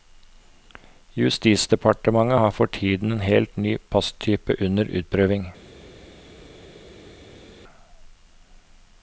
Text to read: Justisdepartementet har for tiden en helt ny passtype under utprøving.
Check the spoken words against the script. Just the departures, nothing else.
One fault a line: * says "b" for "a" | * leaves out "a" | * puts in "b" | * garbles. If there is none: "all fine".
all fine